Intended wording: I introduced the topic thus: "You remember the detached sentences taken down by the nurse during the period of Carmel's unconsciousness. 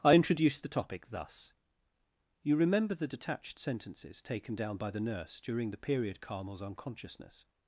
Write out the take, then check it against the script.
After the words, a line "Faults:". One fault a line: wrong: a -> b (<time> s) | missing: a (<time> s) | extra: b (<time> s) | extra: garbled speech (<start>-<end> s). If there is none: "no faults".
I introduced the topic thus: "You remember the detached sentences taken down by the nurse during the period Carmel's unconsciousness.
Faults:
missing: of (6.2 s)